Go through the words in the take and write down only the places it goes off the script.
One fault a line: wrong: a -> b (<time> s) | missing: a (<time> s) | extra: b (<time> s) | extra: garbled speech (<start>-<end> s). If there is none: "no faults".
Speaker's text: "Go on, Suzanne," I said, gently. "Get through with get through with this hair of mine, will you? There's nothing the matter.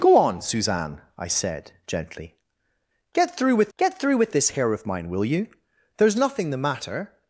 no faults